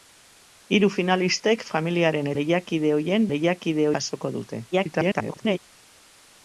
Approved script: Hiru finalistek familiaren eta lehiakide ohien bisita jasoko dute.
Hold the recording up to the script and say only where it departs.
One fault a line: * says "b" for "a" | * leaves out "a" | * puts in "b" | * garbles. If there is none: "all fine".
* leaves out "eta"
* says "lehiakide" for "bisita"
* garbles